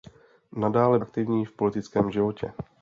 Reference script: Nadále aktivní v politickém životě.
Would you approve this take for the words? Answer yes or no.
yes